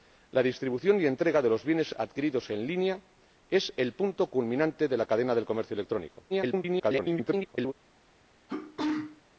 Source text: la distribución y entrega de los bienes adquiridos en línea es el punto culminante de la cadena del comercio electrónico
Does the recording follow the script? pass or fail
fail